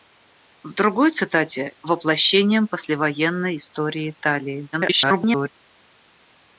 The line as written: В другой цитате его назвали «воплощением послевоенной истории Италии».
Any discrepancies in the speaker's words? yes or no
yes